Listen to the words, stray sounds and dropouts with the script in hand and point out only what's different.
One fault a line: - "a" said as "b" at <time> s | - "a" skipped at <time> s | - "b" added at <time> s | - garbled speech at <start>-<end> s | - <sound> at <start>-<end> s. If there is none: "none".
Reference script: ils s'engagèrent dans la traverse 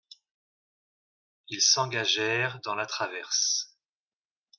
none